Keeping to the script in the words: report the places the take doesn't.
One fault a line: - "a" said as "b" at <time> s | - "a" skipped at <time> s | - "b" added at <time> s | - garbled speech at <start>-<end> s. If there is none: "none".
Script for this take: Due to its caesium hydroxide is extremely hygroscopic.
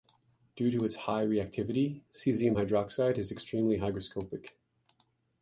- "high reactivity" added at 0.9 s